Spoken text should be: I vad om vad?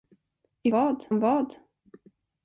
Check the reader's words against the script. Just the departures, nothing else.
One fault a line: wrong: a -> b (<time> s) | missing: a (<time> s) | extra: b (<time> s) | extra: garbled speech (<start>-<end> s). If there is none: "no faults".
no faults